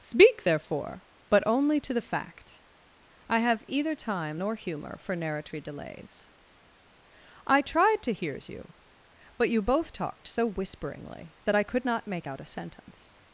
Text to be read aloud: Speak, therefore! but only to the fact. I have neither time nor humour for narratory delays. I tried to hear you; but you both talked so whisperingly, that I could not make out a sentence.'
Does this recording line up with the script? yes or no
no